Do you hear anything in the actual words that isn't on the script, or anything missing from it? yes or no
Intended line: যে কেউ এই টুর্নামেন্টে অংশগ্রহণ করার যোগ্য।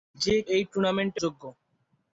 yes